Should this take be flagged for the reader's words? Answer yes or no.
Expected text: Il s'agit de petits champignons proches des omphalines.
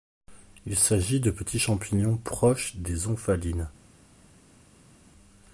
no